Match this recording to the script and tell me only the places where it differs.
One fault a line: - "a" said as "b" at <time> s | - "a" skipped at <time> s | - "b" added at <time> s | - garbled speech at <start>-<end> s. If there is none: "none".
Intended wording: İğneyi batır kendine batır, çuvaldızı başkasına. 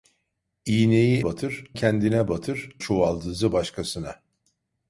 none